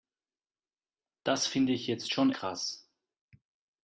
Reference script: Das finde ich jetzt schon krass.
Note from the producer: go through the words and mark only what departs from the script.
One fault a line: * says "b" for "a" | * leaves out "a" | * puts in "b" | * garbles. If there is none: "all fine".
all fine